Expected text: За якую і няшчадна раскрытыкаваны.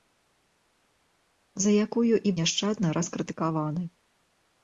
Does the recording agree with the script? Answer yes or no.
yes